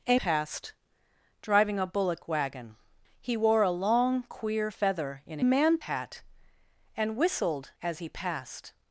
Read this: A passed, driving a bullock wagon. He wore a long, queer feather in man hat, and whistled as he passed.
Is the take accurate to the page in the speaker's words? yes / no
yes